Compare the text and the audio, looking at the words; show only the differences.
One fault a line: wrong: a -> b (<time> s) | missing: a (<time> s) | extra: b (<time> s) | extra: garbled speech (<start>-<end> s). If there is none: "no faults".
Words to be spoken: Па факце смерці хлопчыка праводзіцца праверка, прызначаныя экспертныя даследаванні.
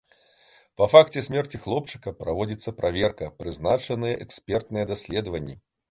no faults